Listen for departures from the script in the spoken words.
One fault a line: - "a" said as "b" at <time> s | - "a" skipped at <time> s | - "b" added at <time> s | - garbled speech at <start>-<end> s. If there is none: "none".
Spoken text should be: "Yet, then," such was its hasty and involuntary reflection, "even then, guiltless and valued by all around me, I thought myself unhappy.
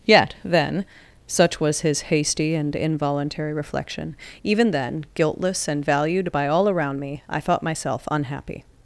- "its" said as "his" at 1.8 s